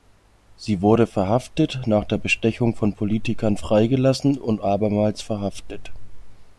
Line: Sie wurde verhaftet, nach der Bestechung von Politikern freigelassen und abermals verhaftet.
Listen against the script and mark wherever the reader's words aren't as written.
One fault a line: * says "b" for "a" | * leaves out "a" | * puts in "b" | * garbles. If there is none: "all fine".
all fine